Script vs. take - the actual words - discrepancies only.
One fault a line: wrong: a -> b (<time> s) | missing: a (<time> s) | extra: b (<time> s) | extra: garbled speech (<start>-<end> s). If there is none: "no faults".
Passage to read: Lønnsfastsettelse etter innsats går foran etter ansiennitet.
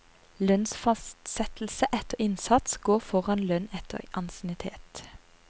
extra: lønn (3.5 s)